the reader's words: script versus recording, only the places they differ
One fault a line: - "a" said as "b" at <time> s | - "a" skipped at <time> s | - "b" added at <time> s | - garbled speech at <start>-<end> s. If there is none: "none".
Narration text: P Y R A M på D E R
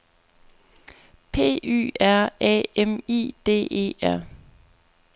- "på" said as "I" at 3.1 s